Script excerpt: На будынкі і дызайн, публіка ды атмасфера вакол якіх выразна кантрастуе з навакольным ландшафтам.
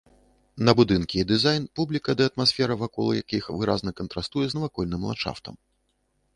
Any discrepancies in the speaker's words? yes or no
no